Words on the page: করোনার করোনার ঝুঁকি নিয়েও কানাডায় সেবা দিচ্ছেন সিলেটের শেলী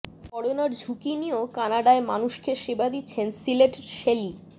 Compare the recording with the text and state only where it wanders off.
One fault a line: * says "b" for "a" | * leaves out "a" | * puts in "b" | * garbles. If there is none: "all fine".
* leaves out "করোনার"
* puts in "মানুষকে"